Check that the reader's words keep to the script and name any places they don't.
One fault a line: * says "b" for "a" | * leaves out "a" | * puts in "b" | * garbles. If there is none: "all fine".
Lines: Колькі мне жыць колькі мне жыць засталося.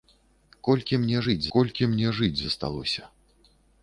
all fine